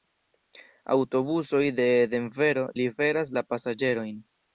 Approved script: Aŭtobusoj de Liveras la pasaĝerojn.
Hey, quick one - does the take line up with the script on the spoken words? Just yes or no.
no